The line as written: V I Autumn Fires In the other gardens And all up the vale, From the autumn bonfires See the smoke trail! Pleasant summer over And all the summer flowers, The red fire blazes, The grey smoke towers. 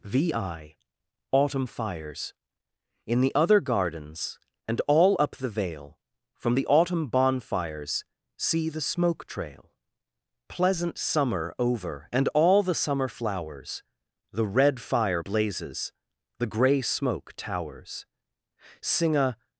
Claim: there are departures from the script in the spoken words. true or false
true